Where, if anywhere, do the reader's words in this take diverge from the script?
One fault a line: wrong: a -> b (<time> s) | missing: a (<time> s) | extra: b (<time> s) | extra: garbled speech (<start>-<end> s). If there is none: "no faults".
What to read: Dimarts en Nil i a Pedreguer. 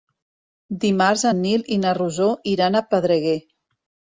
extra: na Rosó iran (1.9 s)